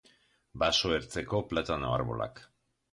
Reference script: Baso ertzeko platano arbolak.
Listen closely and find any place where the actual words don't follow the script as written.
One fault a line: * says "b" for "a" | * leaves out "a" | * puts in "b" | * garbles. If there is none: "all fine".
all fine